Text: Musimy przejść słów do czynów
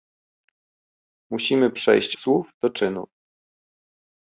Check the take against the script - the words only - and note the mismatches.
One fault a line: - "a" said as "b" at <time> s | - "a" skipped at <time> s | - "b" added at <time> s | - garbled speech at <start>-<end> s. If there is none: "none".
none